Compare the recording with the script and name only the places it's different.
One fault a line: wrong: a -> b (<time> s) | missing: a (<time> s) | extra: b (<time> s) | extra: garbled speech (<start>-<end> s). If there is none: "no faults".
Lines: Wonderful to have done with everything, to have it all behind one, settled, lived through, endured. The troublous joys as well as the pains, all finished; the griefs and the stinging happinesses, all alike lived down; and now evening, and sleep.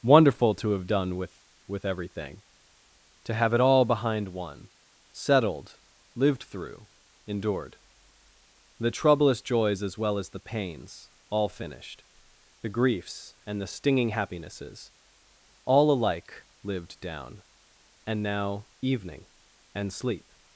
extra: with (1.7 s)